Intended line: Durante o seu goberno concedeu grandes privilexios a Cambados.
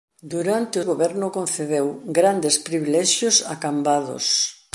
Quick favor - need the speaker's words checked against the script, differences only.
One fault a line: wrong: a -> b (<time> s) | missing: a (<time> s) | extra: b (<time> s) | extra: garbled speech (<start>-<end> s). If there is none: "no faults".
missing: seu (0.8 s)